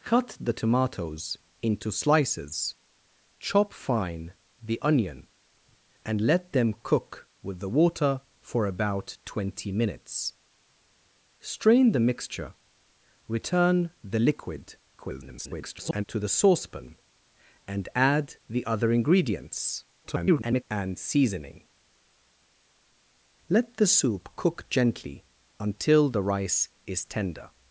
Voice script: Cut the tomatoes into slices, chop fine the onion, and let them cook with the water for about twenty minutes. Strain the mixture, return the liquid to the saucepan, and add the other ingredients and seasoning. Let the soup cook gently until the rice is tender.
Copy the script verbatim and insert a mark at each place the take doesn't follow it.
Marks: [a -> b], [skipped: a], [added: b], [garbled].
Cut the tomatoes into slices, chop fine the onion, and let them cook with the water for about twenty minutes. Strain the mixture, return the liquid [garbled] to the saucepan, and add the other ingredients [garbled] and seasoning. Let the soup cook gently until the rice is tender.